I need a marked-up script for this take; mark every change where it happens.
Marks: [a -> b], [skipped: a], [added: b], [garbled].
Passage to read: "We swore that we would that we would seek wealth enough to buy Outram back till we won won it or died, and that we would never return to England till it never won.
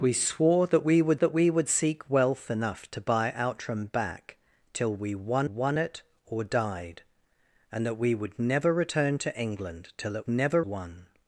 "We swore that we would that we would seek wealth enough to buy Outram back till we won won it or died, and that we would never return to England till it never won.